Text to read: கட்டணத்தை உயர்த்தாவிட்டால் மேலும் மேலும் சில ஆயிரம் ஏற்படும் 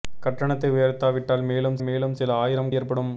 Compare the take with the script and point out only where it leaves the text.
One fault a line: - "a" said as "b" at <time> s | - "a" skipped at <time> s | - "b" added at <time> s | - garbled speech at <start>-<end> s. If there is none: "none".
none